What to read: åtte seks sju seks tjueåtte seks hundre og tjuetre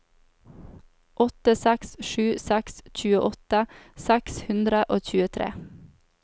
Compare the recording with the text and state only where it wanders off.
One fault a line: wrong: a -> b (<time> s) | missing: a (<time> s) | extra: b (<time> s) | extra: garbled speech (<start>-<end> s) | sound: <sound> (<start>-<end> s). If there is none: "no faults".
no faults